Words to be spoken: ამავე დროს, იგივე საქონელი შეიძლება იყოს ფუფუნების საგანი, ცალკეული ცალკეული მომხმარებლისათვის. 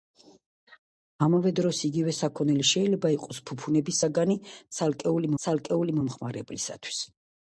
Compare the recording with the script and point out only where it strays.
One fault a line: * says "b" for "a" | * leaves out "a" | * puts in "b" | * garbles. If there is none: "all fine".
all fine